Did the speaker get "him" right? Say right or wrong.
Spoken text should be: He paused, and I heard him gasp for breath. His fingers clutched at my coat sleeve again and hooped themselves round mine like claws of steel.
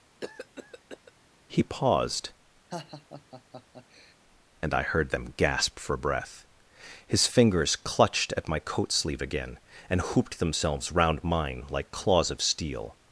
wrong